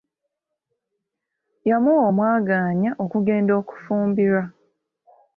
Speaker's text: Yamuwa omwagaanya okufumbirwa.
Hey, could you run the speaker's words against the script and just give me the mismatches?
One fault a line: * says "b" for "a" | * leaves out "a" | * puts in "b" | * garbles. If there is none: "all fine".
* puts in "okugenda"